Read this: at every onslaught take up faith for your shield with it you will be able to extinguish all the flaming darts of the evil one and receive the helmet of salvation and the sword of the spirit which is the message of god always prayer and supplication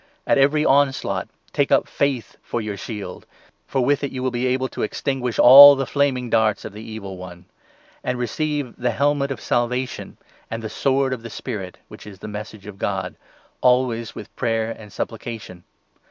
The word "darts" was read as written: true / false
true